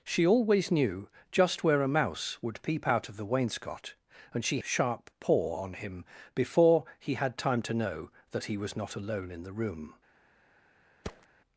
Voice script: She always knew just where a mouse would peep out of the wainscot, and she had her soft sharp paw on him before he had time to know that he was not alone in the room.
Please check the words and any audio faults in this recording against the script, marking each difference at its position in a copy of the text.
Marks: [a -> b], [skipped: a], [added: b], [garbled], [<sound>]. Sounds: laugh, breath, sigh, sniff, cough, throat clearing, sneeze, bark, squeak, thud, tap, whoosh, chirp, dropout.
She always knew just where a mouse would peep out of the wainscot, and she [skipped: had her soft] sharp paw on him before he had time to know that he was not alone in the room. [thud]